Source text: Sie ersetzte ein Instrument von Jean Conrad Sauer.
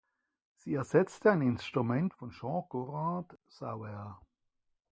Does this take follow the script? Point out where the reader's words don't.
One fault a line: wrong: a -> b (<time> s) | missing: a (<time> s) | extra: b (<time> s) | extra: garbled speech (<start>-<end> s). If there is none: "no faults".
no faults